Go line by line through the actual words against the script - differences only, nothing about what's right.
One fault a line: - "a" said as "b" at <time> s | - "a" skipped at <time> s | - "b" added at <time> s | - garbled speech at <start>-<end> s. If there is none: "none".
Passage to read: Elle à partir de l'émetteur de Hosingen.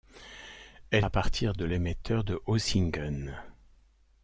none